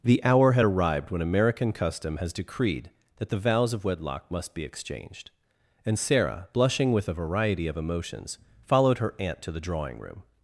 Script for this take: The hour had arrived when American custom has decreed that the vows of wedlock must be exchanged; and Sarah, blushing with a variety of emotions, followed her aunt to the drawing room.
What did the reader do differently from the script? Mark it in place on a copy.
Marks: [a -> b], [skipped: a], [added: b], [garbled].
The hour had arrived when American custom has decreed that the vows of wedlock must be exchanged; and Sarah, blushing with a variety of emotions, followed her aunt to the drawing room.